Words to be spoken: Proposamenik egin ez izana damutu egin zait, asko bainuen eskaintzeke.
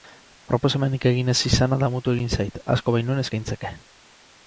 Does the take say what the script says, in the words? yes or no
yes